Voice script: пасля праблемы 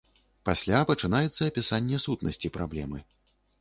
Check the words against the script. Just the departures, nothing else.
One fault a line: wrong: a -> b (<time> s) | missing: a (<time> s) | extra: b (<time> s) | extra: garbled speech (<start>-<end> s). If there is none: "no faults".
extra: пачынаецца апісанне сутнасці (0.9 s)